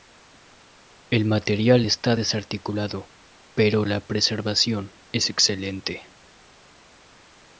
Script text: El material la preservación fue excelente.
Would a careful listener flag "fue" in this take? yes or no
yes